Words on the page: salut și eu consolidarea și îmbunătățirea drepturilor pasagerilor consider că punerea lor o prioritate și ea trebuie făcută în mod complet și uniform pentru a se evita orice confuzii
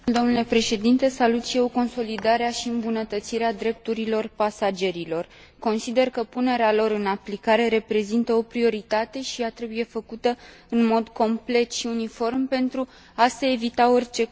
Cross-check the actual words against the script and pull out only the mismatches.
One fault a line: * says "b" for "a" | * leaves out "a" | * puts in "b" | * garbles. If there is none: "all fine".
* puts in "în aplicare reprezintă"